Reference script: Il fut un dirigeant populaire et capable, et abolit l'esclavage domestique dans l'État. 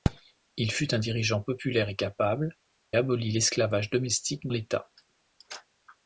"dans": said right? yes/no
no